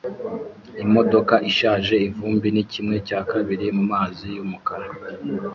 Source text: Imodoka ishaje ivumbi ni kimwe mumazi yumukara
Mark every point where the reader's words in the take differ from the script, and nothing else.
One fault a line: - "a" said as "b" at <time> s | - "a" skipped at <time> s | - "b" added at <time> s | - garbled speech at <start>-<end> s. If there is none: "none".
- "cya kabiri" added at 3.1 s